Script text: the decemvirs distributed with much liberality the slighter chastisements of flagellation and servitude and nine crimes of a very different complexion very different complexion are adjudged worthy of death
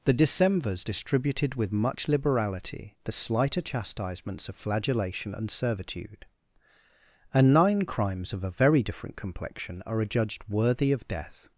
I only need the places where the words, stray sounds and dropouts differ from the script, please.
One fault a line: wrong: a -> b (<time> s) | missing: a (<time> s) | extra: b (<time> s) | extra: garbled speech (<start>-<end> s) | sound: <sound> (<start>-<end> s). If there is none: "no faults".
missing: very different complexion (9.8 s)